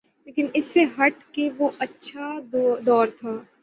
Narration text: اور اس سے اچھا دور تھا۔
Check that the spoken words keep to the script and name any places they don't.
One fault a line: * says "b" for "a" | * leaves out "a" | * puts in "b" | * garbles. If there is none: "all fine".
* says "لیکن" for "اور"
* puts in "ہٹ کے وہ"